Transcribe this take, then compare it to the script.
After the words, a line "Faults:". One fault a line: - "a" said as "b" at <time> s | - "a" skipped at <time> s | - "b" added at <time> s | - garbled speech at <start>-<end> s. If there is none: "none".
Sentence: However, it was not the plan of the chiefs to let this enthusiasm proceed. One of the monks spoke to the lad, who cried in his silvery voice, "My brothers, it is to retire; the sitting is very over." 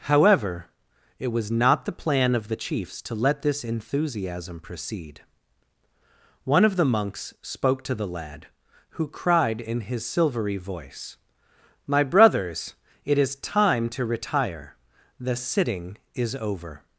However, it was not the plan of the chiefs to let this enthusiasm proceed. One of the monks spoke to the lad, who cried in his silvery voice, "My brothers, it is time to retire; the sitting is over."
Faults:
- "time" added at 13.4 s
- "very" skipped at 16.3 s